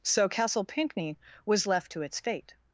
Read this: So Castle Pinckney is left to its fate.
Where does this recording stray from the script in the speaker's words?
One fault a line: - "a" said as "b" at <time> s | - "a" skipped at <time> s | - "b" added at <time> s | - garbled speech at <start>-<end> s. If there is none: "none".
- "is" said as "was" at 1.4 s